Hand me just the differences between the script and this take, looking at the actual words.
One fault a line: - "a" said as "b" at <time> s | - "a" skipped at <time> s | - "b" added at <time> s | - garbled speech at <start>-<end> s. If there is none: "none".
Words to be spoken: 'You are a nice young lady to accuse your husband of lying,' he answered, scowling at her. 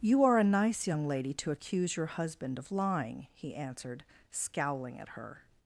none